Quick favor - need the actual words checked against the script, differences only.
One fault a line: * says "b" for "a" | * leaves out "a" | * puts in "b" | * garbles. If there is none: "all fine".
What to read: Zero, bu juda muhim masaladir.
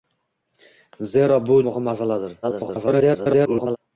* leaves out "juda"
* garbles